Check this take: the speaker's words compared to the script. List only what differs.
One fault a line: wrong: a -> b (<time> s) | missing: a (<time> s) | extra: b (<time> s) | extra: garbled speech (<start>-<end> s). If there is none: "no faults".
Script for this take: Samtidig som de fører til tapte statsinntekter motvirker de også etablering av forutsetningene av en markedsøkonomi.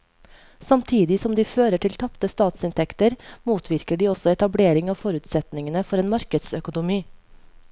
wrong: av -> for (5.9 s)